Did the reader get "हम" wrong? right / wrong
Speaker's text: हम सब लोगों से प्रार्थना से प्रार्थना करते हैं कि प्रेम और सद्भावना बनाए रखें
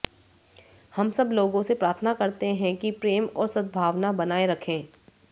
right